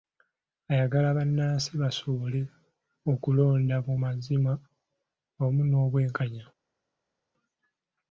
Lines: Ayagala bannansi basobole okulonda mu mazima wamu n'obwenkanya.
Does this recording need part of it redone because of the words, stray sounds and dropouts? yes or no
no